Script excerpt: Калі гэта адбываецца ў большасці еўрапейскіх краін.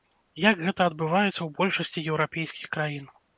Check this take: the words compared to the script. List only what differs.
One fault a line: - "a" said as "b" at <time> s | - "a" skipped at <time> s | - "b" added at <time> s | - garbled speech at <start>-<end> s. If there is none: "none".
- "Калі" said as "Як" at 0.4 s